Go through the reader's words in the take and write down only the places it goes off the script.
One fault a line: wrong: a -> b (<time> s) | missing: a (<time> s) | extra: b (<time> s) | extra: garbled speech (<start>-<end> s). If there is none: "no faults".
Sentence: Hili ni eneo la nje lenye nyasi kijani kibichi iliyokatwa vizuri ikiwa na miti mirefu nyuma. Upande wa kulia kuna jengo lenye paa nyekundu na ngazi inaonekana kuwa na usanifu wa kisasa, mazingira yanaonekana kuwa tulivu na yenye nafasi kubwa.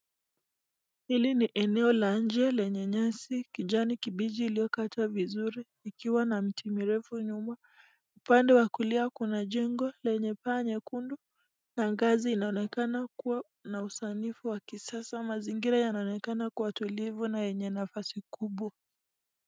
no faults